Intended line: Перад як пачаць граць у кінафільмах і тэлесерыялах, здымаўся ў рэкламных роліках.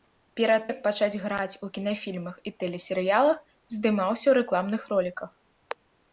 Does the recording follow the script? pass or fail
pass